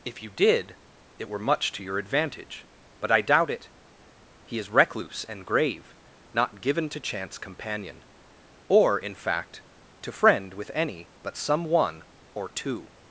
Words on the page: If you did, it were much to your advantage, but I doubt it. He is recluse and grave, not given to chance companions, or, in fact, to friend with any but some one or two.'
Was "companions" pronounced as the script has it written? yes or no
no